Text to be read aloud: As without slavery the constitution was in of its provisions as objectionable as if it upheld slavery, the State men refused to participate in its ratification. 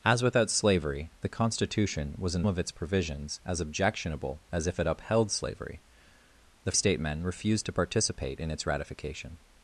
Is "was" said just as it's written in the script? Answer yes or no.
yes